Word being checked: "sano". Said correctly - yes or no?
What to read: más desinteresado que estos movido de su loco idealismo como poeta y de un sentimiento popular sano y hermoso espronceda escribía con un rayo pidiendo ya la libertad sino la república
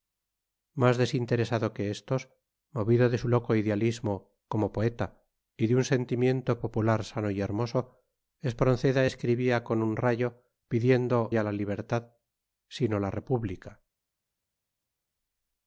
yes